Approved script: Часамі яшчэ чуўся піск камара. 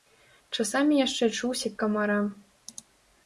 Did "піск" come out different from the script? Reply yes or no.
yes